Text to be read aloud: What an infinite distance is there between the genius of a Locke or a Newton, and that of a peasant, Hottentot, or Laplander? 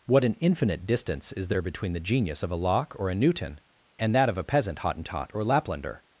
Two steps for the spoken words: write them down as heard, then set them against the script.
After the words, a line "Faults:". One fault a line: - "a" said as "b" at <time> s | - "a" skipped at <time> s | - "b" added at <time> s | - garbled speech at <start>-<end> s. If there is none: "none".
What an infinite distance is there between the genius of a Locke or a Newton, and that of a peasant, Hottentot, or Laplander?
Faults:
none